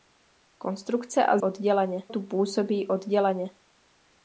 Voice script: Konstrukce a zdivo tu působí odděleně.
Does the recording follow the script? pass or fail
fail